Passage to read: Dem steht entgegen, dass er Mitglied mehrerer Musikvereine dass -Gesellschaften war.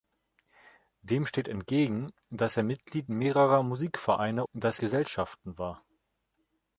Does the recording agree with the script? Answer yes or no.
yes